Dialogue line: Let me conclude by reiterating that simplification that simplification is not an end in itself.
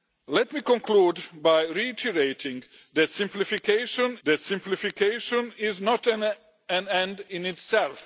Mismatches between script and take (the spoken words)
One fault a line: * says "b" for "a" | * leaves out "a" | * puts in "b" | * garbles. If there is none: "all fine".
all fine